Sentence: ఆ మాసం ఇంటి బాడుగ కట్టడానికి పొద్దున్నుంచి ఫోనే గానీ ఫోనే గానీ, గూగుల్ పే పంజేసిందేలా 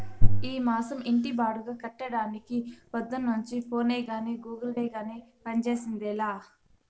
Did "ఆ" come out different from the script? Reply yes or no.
yes